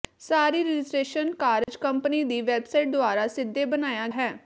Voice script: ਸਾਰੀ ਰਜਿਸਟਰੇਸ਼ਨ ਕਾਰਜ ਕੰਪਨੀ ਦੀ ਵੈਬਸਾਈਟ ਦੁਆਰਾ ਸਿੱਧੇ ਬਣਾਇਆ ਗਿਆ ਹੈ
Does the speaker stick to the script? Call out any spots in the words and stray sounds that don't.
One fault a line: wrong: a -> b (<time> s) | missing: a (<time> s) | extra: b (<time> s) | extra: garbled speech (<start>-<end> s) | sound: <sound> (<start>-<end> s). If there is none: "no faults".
sound: dropout (1.6-1.7 s)
missing: ਗਿਆ (4.1 s)